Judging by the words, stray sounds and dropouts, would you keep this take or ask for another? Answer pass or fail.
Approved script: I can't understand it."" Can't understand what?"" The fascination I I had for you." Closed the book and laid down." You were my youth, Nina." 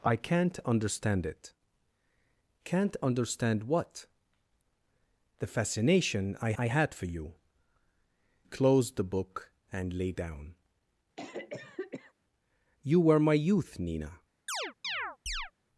fail